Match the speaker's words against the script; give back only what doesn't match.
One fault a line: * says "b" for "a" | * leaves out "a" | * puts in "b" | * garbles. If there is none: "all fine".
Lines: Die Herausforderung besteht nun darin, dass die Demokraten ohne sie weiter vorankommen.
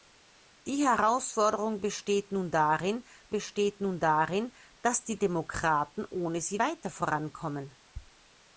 * puts in "besteht nun darin"